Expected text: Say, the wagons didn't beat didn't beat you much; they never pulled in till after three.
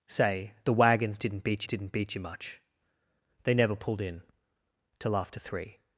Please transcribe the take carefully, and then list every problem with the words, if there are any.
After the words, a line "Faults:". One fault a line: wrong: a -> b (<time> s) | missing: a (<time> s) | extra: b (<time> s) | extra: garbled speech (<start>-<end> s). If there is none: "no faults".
Say, the wagons didn't beat didn't beat you much; they never pulled in till after three.
Faults:
no faults